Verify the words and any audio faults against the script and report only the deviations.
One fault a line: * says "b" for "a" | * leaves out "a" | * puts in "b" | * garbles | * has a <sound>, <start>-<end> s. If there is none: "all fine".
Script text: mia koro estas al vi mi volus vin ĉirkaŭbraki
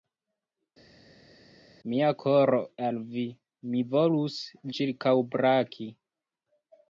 * leaves out "estas"
* leaves out "vin"